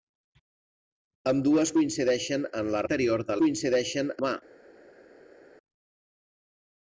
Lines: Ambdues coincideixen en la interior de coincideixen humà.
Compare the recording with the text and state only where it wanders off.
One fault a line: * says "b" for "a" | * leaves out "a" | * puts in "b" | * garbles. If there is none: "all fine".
all fine